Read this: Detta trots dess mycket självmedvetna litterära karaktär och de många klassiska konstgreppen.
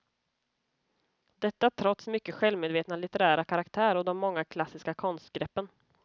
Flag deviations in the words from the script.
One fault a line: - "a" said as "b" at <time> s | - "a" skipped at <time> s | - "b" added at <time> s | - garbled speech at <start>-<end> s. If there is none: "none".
- "dess" skipped at 2.1 s